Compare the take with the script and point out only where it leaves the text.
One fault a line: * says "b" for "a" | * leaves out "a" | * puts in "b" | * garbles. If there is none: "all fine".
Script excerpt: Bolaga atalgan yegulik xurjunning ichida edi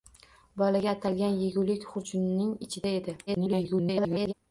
* garbles